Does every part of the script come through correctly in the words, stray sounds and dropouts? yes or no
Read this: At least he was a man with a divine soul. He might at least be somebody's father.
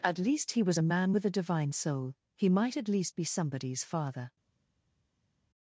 yes